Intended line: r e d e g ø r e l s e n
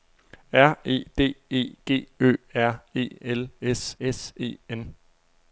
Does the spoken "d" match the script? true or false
true